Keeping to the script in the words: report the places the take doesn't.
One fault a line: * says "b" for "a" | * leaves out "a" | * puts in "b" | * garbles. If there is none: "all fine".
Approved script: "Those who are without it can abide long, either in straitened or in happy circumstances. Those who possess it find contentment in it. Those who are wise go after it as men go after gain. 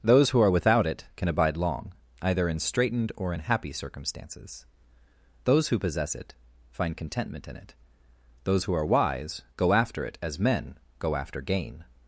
all fine